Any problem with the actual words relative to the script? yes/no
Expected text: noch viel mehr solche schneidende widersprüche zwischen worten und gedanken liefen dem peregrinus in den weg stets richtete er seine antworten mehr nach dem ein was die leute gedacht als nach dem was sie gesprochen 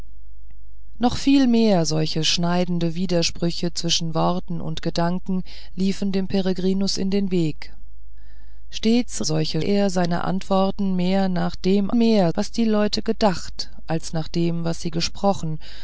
yes